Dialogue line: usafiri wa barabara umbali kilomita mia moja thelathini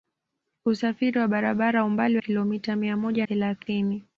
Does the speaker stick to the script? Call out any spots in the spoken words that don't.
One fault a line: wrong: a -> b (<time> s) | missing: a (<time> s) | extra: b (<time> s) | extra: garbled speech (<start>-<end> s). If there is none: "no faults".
no faults